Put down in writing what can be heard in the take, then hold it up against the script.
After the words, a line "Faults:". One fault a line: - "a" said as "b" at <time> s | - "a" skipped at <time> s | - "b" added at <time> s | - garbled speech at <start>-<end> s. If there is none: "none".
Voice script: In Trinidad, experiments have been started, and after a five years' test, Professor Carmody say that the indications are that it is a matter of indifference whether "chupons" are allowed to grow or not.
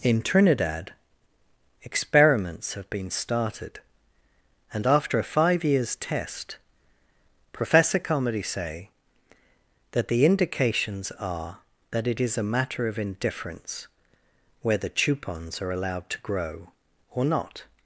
In Trinidad, experiments have been started, and after a five years' test, Professor Carmody say that the indications are that it is a matter of indifference whether "chupons" are allowed to grow or not.
Faults:
none